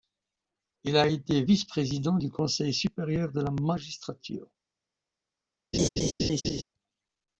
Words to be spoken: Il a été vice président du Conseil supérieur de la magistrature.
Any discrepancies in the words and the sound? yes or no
yes